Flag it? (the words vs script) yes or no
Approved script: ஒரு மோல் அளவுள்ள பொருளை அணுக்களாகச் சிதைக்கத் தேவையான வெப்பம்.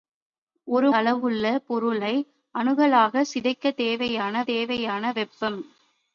yes